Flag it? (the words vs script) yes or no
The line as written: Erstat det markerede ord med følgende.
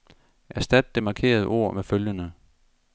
no